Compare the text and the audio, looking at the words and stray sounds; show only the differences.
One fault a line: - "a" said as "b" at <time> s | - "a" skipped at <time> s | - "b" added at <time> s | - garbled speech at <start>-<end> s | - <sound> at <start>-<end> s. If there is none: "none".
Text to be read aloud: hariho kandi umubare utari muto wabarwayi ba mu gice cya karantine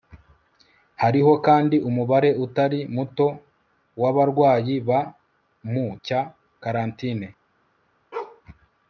- "gice" skipped at 5.8 s
- bark at 8.1-8.4 s